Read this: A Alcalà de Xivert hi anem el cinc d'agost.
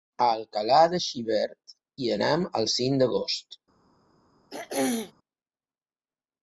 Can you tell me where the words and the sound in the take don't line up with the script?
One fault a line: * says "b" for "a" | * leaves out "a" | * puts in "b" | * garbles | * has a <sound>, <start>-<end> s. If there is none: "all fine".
* has a throat clearing, 4.5-5.1 s